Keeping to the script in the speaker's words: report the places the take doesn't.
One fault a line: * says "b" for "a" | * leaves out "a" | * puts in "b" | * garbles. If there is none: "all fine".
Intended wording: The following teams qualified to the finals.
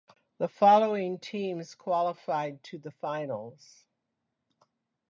all fine